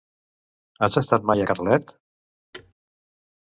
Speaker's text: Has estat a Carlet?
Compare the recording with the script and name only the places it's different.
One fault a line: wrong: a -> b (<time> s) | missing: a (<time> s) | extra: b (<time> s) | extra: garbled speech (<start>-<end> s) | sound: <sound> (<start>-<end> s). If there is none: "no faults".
extra: mai (1.3 s)
sound: thud (2.5-2.7 s)